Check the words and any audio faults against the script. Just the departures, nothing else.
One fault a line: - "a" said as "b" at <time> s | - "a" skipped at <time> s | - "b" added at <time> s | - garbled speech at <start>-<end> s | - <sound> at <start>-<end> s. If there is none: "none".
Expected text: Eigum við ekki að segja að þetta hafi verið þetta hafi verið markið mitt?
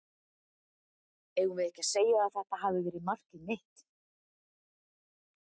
- "þetta hafi verið" skipped at 3.1 s